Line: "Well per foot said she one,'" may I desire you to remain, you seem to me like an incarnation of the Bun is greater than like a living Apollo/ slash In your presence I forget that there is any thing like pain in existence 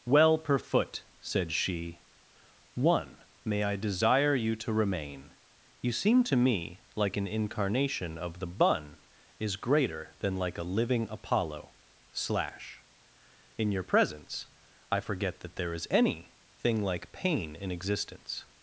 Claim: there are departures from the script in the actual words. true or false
false